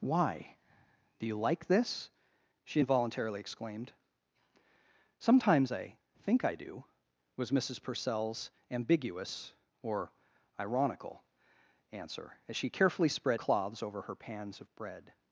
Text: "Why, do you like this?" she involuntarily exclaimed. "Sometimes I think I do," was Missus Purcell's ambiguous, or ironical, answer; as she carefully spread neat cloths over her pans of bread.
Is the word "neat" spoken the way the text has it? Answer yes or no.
no